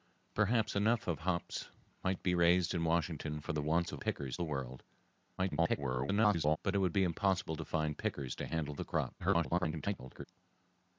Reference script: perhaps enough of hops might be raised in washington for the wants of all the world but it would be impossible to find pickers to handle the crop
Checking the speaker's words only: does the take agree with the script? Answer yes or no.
no